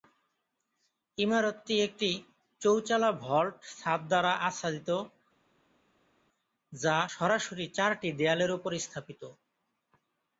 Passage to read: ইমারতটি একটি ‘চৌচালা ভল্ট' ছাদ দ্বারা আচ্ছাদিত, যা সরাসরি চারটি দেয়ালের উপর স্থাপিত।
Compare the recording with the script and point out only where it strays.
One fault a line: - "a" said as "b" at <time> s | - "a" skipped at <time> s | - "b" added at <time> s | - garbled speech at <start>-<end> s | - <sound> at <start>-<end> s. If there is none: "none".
none